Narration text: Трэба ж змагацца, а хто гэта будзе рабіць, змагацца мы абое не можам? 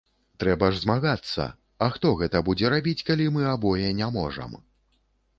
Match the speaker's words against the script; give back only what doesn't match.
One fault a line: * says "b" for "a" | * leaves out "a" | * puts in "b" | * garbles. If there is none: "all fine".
* says "калі" for "змагацца"